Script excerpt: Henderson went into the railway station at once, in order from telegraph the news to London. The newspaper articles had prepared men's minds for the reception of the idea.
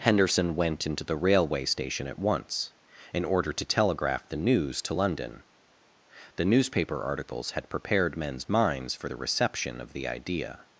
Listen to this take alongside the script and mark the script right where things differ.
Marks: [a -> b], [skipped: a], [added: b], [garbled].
Henderson went into the railway station at once, in order [from -> to] telegraph the news to London. The newspaper articles had prepared men's minds for the reception of the idea.